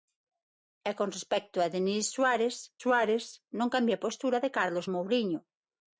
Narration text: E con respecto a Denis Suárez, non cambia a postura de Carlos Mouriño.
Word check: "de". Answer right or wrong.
right